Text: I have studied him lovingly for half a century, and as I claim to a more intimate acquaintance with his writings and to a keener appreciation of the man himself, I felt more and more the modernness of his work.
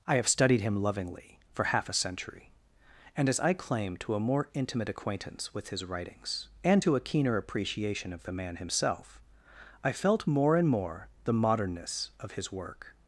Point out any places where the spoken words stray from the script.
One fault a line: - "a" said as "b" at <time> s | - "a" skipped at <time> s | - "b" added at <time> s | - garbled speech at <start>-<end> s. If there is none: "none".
none